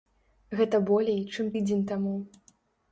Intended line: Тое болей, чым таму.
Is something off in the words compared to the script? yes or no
yes